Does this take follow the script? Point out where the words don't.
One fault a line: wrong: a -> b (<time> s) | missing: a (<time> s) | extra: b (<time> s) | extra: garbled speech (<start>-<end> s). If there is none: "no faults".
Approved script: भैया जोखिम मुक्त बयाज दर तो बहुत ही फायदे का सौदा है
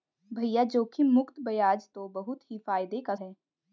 missing: दर (1.9 s)
missing: सौदा (3.1 s)